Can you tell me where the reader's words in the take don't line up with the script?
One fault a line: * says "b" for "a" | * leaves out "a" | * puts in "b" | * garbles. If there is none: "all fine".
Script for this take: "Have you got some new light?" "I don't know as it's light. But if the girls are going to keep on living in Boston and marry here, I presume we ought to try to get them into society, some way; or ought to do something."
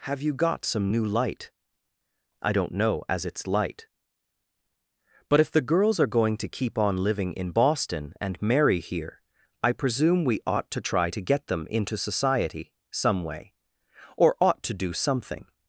all fine